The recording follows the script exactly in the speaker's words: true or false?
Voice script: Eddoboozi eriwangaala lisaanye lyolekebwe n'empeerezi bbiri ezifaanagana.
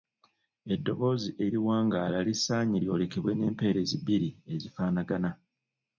true